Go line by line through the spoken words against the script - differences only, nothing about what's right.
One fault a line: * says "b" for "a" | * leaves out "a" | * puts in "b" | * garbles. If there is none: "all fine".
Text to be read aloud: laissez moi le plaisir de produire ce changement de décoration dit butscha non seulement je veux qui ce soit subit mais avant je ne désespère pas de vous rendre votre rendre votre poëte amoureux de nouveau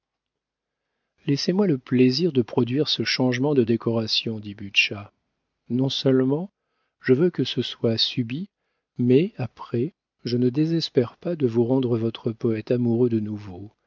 * says "que" for "qui"
* says "après" for "avant"
* leaves out "rendre votre"